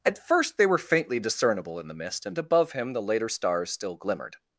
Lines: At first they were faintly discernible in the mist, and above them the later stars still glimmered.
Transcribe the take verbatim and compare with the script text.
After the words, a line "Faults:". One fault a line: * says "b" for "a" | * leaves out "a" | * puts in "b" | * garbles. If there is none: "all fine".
At first they were faintly discernible in the mist, and above him the later stars still glimmered.
Faults:
* says "him" for "them"